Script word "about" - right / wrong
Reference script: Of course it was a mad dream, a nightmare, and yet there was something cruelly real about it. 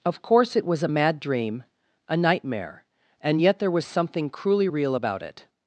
right